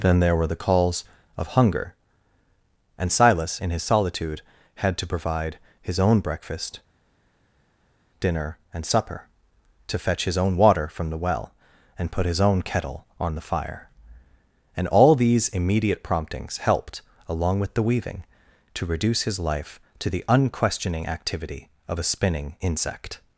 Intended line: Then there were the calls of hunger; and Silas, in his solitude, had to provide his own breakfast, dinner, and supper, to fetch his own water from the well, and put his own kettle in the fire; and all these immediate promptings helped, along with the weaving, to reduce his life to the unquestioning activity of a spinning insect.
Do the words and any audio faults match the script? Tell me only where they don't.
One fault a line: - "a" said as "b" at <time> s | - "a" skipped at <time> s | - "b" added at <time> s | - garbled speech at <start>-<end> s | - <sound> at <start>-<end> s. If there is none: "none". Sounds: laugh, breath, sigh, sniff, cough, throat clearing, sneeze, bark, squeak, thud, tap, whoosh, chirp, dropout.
- "in" said as "on" at 13.2 s